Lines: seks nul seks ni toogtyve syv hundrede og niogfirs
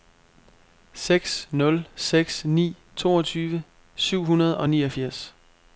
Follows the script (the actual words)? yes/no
yes